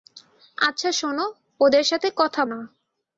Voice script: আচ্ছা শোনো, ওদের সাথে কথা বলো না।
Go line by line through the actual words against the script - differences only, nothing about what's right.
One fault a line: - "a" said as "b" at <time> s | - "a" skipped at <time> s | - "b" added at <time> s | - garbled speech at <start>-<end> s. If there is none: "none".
- "বলো" skipped at 2.4 s